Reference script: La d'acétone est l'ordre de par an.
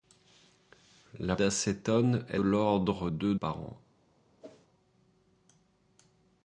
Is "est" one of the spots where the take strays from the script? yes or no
no